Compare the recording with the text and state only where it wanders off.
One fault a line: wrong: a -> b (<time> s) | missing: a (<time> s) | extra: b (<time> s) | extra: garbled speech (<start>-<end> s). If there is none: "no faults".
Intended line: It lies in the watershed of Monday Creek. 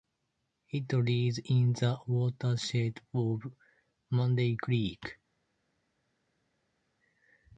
no faults